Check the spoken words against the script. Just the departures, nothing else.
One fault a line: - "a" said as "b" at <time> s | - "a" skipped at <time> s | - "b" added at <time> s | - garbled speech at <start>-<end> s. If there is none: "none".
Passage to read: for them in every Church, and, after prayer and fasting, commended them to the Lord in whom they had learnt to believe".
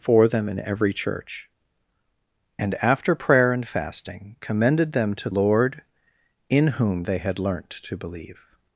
- "the" skipped at 5.3 s